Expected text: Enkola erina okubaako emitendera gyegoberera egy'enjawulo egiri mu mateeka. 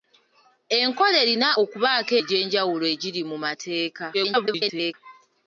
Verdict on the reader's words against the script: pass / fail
fail